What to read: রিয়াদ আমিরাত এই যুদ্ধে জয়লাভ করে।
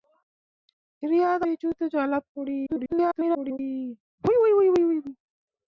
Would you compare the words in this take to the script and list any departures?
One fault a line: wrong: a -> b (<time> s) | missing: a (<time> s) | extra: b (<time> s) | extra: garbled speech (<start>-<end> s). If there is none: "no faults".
missing: আমিরাত (1.4 s)
extra: garbled speech (2.7-3.6 s)